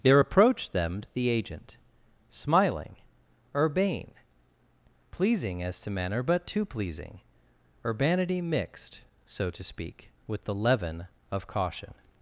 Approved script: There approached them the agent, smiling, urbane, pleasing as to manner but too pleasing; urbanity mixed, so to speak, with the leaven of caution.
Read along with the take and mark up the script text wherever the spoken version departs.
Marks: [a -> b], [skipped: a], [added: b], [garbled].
There approached them the agent, smiling, urbane, pleasing as to manner but too pleasing; urbanity mixed, so to speak, with the leaven of caution.